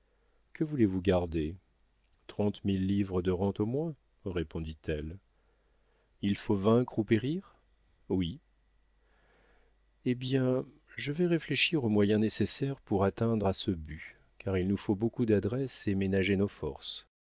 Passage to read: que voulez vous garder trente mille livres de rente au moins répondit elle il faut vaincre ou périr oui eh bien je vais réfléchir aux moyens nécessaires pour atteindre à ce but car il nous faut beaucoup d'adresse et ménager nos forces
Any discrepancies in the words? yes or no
no